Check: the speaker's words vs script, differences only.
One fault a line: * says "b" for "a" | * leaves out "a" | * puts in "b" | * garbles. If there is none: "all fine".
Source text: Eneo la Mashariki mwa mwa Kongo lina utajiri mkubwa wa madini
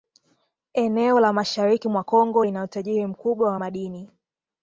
* leaves out "mwa"